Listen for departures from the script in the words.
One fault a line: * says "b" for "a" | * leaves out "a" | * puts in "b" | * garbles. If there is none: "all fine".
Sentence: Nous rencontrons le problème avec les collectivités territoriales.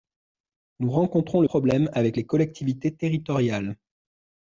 all fine